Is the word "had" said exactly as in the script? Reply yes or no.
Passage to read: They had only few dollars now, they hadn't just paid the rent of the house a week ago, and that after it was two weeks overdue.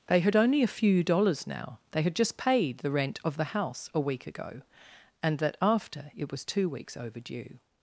yes